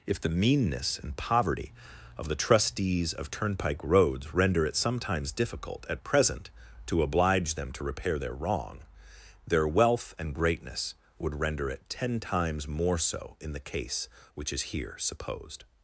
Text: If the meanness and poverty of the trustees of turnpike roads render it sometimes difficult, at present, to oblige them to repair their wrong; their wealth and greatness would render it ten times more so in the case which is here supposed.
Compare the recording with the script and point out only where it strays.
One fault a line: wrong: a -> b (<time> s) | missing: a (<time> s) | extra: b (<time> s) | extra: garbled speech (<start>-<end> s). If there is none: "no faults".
no faults